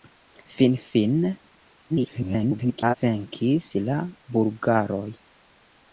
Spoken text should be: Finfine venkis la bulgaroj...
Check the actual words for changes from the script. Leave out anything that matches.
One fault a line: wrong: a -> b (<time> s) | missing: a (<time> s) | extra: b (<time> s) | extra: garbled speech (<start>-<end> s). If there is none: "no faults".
extra: garbled speech (1.9-2.9 s)